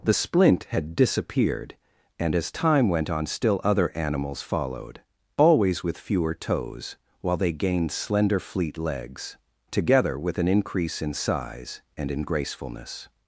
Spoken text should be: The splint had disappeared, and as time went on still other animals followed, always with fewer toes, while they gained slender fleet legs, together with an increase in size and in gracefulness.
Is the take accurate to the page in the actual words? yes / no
yes